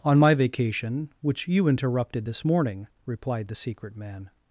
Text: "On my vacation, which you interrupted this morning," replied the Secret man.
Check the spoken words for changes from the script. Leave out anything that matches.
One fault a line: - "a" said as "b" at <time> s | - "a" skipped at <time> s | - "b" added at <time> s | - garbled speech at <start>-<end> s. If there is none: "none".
none